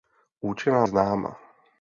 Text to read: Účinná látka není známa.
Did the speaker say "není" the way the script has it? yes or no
no